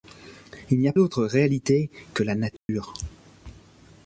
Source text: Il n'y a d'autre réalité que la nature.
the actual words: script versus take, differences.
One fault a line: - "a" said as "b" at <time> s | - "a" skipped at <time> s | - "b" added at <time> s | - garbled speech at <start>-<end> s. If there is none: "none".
none